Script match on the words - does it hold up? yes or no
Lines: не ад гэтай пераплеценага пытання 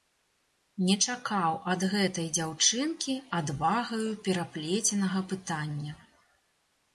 no